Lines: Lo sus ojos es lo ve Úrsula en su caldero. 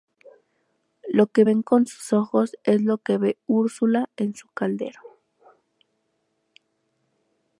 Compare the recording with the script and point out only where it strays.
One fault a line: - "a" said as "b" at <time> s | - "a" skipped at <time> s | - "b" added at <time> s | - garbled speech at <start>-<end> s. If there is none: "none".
- "que ven con" added at 1.3 s
- "que" added at 3.0 s